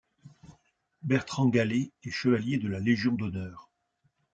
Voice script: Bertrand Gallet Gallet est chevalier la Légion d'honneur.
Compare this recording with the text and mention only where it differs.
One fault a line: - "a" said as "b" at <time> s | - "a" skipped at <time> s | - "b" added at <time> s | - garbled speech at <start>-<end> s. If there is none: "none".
- "Gallet" skipped at 1.9 s
- "de" added at 2.6 s